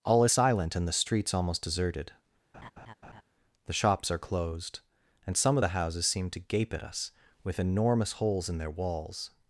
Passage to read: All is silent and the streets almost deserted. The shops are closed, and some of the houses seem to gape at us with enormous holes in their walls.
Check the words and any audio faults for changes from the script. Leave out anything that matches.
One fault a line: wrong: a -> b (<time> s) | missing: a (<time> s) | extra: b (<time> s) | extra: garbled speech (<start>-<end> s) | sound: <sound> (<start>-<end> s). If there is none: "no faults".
sound: laugh (2.5-3.2 s)